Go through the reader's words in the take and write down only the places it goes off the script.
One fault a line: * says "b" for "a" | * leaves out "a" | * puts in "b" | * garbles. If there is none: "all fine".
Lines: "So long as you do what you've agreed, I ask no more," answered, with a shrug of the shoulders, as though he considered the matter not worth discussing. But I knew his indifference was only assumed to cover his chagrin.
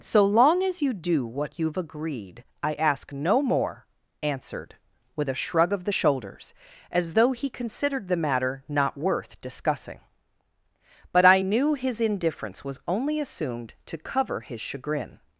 all fine